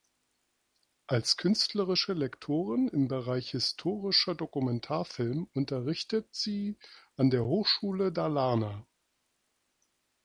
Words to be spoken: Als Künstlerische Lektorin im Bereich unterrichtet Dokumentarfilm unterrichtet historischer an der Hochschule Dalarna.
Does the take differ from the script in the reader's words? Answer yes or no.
yes